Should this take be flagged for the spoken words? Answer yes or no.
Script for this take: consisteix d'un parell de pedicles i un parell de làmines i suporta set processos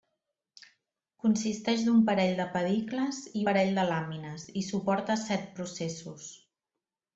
yes